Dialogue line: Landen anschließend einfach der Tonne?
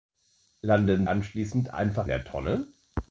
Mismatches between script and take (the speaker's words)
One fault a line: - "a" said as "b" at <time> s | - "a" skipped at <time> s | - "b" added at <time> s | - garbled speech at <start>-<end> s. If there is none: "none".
none